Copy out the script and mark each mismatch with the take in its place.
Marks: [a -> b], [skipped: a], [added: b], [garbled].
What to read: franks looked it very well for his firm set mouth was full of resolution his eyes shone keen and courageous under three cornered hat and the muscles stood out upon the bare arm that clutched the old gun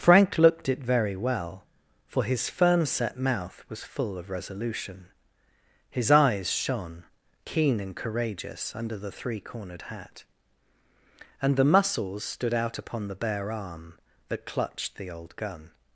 [franks -> frank] looked it very well for his firm set mouth was full of resolution his eyes shone keen and courageous under [added: the] three cornered hat and the muscles stood out upon the bare arm that clutched the old gun